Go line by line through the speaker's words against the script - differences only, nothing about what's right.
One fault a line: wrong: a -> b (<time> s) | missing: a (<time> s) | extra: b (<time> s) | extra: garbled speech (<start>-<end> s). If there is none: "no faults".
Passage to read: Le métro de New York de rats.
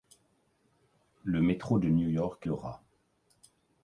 no faults